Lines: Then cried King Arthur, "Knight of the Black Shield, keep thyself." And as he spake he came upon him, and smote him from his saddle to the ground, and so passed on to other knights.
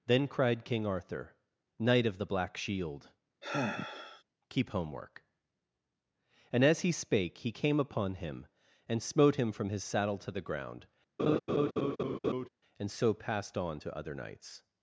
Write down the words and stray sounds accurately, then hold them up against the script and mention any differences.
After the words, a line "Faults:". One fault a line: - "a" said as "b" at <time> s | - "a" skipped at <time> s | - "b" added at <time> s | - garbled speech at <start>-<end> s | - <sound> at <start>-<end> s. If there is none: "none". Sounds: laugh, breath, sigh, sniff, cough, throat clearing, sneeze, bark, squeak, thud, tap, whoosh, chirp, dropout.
Then cried King Arthur, "Knight of the Black Shield, keep homework." And as he spake he came upon him, and smote him from his saddle to the ground, and so passed on to other knights.
Faults:
- sigh at 3.4-4.2 s
- "thyself" said as "homework" at 4.7 s
- laugh at 11.2-12.5 s